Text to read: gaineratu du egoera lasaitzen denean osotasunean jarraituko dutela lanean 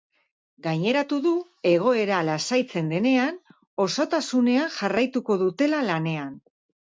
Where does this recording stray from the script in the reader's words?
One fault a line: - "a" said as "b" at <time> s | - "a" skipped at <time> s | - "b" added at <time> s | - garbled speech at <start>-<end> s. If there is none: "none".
none